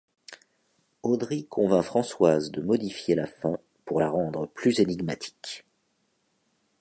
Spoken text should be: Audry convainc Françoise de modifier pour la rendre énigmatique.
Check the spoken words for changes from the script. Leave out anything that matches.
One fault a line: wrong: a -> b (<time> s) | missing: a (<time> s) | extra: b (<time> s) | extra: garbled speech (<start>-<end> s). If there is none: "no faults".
extra: la fin (3.1 s)
extra: plus (4.5 s)